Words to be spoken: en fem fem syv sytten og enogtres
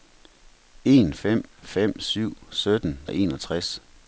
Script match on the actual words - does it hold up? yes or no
yes